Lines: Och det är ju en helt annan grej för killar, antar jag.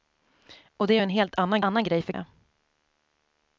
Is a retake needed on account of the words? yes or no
yes